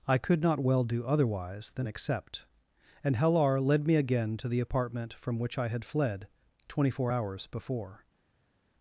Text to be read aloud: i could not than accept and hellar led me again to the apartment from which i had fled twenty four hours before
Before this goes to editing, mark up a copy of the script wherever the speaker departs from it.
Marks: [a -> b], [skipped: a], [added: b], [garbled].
i could not [added: well do otherwise] than accept and hellar led me again to the apartment from which i had fled twenty four hours before